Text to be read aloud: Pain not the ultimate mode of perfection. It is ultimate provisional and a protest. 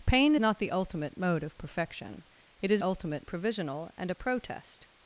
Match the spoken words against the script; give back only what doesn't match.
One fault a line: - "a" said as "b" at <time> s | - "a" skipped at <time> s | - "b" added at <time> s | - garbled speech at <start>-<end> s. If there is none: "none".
none